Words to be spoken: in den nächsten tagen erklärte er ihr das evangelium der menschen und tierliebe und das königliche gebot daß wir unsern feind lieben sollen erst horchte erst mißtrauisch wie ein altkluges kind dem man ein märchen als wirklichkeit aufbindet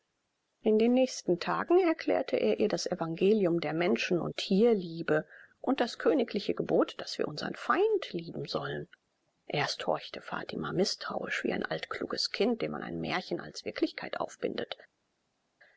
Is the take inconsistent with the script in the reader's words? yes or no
yes